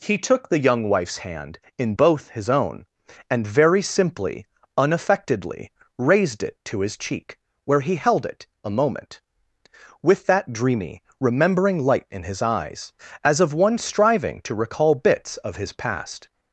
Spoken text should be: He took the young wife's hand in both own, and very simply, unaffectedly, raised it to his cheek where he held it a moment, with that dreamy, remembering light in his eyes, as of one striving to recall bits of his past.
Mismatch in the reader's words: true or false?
true